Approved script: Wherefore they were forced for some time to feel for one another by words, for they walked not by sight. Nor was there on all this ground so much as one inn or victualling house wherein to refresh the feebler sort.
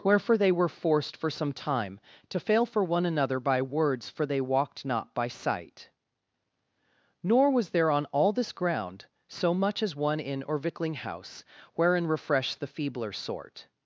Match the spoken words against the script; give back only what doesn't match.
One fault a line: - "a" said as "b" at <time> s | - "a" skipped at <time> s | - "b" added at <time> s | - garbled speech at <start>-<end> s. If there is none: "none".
- "feel" said as "fail" at 2.4 s
- "to" skipped at 12.1 s